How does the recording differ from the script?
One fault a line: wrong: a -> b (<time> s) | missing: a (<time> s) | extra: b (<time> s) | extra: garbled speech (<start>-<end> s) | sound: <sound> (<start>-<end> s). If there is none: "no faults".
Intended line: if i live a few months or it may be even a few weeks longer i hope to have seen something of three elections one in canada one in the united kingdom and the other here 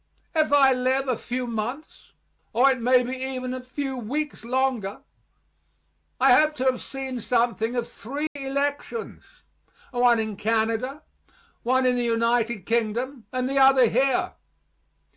sound: dropout (8.3-8.4 s)